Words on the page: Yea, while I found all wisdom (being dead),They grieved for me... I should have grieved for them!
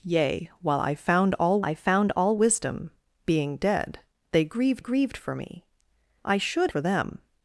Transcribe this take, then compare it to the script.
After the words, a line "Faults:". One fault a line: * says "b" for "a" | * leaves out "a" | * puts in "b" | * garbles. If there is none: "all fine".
Yea, while I found all I found all wisdom (being dead),They grieved grieved for me... I should for them!
Faults:
* puts in "I found all"
* puts in "grieved"
* leaves out "have grieved"